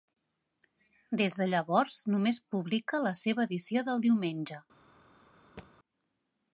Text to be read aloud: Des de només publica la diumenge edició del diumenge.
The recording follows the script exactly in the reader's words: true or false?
false